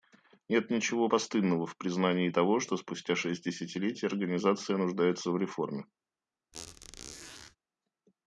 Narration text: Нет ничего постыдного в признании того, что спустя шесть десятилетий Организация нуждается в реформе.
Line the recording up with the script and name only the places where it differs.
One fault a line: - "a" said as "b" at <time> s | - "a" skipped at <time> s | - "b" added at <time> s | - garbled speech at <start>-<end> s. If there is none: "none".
none